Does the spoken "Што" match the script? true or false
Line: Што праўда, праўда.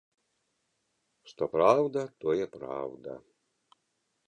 true